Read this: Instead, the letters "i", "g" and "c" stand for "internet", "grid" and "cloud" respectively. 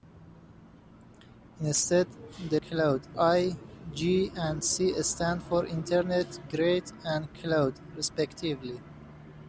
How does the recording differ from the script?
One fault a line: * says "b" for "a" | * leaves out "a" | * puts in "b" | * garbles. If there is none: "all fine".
* says "cloud" for "letters"